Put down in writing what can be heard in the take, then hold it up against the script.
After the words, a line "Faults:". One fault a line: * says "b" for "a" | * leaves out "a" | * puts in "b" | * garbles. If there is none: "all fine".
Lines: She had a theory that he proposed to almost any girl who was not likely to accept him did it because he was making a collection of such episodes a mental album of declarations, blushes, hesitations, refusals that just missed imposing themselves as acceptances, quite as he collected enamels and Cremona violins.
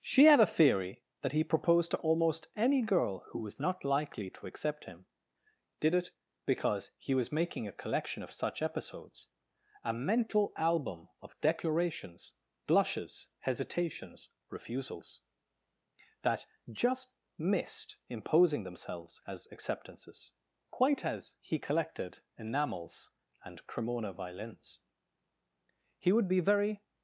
She had a theory that he proposed to almost any girl who was not likely to accept him did it because he was making a collection of such episodes a mental album of declarations, blushes, hesitations, refusals that just missed imposing themselves as acceptances, quite as he collected enamels and Cremona violins. He would be very
Faults:
* puts in "He would be very"